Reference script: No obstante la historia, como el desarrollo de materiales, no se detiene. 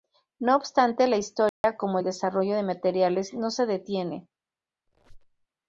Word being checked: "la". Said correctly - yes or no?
yes